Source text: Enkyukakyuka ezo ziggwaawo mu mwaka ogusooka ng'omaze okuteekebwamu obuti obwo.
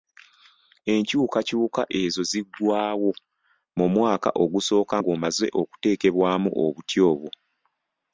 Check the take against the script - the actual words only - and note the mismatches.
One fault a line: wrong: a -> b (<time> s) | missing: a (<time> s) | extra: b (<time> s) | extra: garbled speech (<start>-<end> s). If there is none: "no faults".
no faults